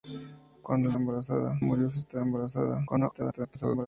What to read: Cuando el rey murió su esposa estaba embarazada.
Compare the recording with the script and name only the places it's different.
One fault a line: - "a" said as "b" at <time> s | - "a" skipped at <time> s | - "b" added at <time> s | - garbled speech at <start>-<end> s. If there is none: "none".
- "rey" said as "embarazada" at 1.0 s
- "esposa" skipped at 2.0 s
- garbled speech at 2.9-3.9 s